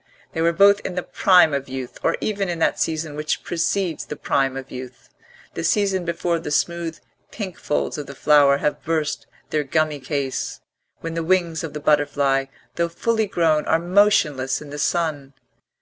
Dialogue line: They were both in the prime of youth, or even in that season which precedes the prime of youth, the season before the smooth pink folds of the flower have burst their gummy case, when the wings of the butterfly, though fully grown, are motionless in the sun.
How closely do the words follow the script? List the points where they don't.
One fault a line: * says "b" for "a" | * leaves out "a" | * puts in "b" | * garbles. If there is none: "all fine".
all fine